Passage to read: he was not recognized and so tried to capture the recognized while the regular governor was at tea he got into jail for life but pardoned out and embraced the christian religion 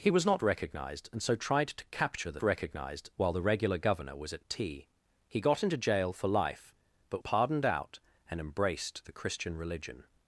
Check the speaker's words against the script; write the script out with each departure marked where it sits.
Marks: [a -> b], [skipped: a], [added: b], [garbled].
he was not recognized and so tried to capture the recognized while the regular governor was at tea he got into jail for life but pardoned out and embraced the christian religion